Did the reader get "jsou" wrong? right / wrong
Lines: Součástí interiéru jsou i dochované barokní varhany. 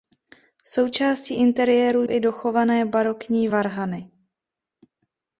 wrong